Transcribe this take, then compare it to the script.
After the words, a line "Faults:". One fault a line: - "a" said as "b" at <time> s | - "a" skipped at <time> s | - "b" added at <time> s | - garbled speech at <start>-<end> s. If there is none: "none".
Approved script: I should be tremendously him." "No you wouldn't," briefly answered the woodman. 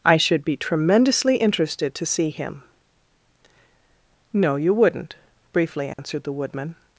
I should be tremendously interested to see him." "No you wouldn't," briefly answered the woodman.
Faults:
- "interested to see" added at 1.4 s